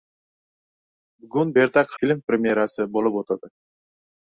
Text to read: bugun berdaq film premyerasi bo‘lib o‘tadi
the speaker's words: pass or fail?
pass